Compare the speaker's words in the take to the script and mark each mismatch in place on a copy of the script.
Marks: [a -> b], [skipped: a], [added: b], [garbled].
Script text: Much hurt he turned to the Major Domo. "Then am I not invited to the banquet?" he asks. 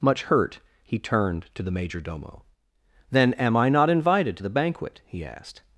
Much hurt he turned to the Major Domo. "Then am I not invited to the banquet?" he [asks. -> asked]